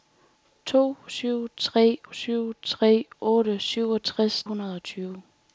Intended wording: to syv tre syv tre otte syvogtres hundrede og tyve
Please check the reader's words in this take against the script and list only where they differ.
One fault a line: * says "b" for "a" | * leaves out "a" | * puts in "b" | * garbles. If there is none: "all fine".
all fine